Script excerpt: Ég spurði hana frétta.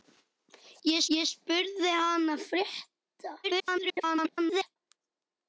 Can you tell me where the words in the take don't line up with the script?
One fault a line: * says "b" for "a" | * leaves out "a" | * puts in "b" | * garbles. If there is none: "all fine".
* puts in "ég"
* garbles